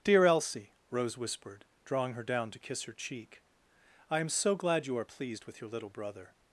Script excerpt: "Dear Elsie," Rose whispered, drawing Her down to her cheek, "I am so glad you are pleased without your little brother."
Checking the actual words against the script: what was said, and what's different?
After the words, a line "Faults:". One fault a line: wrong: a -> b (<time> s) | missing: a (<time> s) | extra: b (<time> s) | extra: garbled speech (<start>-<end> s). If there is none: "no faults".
"Dear Elsie," Rose whispered, drawing Her down to kiss her cheek, "I am so glad you are pleased with your little brother."
Faults:
extra: kiss (2.6 s)
wrong: without -> with (5.4 s)